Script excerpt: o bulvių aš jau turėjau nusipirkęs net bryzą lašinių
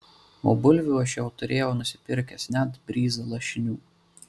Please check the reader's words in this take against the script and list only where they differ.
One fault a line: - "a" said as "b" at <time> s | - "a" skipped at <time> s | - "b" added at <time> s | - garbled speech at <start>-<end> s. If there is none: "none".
none